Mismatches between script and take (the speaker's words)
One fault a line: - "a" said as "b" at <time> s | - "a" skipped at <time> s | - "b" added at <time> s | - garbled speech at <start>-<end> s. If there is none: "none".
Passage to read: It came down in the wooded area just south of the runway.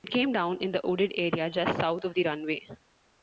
none